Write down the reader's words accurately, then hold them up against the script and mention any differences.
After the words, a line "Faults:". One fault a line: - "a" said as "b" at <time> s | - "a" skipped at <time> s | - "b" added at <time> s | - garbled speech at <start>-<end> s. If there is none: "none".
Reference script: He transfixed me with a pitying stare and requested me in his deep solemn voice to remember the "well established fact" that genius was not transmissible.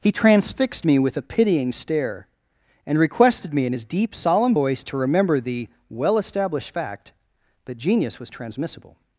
He transfixed me with a pitying stare and requested me in his deep solemn voice to remember the "well established fact" that genius was transmissible.
Faults:
- "not" skipped at 8.3 s